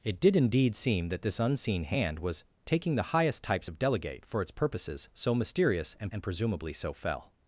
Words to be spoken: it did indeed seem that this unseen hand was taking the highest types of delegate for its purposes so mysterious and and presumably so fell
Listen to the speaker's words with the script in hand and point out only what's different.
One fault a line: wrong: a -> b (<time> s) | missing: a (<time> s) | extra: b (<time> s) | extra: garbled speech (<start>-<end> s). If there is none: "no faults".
no faults